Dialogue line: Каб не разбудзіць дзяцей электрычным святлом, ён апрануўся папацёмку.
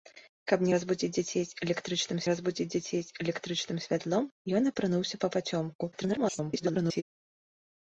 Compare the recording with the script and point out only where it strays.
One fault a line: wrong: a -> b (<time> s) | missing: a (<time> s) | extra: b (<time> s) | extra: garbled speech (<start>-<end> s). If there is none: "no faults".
extra: разбудзіць дзяцей электрычным (2.3 s)
extra: garbled speech (5.9-7.0 s)